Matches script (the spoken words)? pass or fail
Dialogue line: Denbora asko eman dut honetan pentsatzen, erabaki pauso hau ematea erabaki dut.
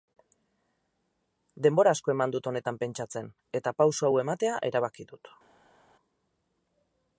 fail